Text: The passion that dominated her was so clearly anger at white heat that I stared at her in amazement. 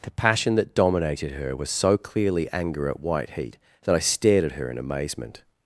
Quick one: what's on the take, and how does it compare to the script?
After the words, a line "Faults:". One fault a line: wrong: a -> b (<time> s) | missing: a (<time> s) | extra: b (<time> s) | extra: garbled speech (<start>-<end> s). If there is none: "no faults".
The passion that dominated her was so clearly anger at white heat that I stared at her in amazement.
Faults:
no faults